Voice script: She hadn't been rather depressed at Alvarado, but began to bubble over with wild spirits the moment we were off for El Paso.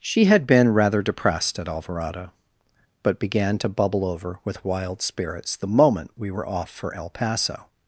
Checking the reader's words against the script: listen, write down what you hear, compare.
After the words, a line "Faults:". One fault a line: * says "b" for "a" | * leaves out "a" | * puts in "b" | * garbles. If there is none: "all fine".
She had been rather depressed at Alvarado, but began to bubble over with wild spirits the moment we were off for El Paso.
Faults:
* says "had" for "hadn't"